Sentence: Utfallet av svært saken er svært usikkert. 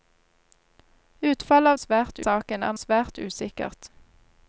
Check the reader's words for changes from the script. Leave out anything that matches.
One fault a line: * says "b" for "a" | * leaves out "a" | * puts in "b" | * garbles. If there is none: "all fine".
all fine